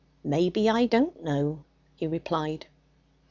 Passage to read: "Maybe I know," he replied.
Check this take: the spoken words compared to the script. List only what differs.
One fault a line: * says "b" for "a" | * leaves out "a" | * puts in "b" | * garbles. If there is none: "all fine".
* puts in "don't"